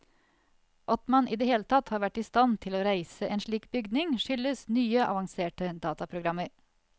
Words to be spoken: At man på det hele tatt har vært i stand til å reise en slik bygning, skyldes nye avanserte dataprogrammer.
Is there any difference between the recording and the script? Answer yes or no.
yes